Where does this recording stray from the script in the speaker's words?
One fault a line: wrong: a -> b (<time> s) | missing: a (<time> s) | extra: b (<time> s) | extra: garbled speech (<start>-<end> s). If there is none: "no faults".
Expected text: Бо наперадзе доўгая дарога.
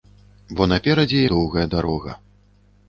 no faults